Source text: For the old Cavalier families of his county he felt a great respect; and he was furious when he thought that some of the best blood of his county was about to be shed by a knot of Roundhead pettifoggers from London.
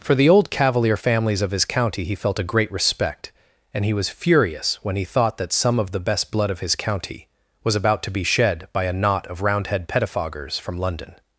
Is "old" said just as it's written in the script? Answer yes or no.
yes